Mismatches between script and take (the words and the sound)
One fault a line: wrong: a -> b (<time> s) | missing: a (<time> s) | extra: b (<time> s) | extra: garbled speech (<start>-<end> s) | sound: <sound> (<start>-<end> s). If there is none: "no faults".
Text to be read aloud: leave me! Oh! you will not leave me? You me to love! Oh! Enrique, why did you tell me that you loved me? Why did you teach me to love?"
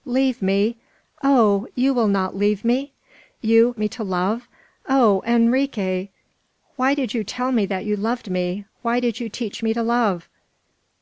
no faults